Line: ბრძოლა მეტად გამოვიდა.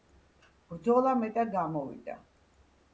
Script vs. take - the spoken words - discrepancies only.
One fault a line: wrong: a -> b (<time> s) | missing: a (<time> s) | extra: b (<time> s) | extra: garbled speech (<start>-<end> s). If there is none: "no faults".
no faults